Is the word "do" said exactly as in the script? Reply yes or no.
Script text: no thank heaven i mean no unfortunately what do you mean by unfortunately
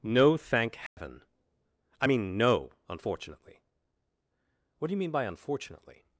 yes